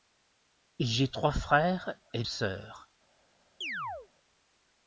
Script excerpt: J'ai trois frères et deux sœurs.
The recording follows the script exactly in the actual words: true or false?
false